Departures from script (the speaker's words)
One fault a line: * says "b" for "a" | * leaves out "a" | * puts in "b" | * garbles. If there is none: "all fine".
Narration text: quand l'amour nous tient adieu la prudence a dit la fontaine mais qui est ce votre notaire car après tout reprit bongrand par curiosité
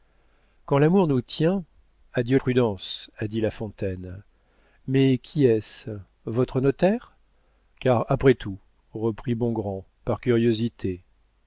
* leaves out "la"